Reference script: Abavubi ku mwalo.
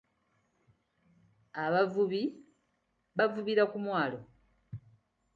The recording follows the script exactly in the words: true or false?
false